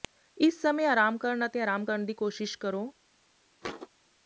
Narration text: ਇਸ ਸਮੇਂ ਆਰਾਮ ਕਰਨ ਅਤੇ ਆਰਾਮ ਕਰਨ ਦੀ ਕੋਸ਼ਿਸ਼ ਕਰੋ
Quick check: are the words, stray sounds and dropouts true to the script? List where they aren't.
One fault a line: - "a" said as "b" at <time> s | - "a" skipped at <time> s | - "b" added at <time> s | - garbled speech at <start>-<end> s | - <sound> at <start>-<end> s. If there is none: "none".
- thud at 3.6-3.9 s